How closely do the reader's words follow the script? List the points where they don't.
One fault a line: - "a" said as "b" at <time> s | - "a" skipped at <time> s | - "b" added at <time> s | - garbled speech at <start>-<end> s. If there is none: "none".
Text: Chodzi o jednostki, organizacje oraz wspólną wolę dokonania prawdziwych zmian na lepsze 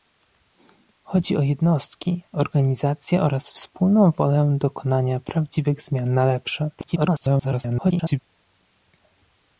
- garbled speech at 6.8-8.2 s